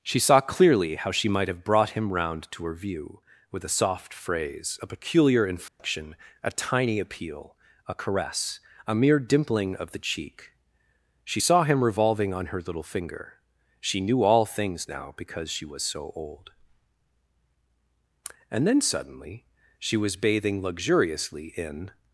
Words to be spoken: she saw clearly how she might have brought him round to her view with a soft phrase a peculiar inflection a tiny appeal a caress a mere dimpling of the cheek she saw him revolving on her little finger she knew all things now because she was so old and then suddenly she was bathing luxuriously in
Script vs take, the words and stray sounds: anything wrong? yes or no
yes